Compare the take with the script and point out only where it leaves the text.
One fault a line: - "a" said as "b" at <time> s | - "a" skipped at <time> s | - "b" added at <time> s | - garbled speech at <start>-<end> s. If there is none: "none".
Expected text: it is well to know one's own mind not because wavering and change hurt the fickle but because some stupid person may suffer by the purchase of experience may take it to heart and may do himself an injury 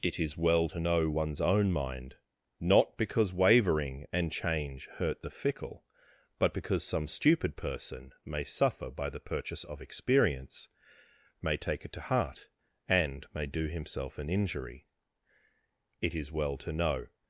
- "it is well to know" added at 16.0 s